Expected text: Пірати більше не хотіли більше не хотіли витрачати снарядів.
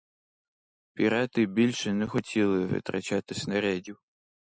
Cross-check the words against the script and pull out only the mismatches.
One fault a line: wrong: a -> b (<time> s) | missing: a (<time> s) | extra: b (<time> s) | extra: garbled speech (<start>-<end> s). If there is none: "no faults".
missing: більше не хотіли (2.6 s)